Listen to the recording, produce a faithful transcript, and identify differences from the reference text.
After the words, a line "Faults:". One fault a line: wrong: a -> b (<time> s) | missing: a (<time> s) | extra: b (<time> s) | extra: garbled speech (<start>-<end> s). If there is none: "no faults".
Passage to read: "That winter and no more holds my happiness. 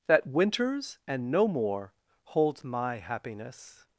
"That winters and no more holds my happiness.
Faults:
wrong: winter -> winters (0.3 s)